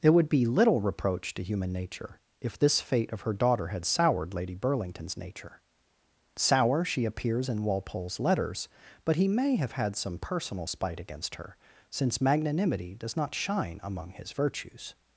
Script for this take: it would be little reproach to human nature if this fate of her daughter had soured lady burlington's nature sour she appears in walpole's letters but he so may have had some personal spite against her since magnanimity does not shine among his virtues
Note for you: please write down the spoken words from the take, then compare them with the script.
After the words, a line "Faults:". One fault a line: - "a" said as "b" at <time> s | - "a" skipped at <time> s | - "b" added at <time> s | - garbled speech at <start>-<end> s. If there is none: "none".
it would be little reproach to human nature if this fate of her daughter had soured lady burlington's nature sour she appears in walpole's letters but he may have had some personal spite against her since magnanimity does not shine among his virtues
Faults:
- "so" skipped at 9.3 s